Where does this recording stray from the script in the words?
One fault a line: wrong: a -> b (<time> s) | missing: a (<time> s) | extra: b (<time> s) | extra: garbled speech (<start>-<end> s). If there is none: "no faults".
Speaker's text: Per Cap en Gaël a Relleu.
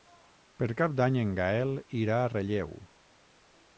extra: d'Any (1.0 s)
extra: irà (2.0 s)